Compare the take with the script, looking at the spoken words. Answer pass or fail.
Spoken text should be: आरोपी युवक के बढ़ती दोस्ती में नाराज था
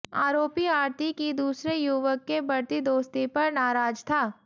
fail